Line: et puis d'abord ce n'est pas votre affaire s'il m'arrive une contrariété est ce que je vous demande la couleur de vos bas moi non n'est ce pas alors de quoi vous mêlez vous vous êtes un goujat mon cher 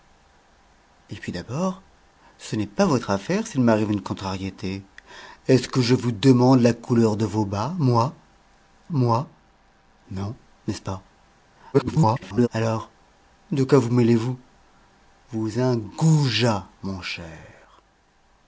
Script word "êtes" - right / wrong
wrong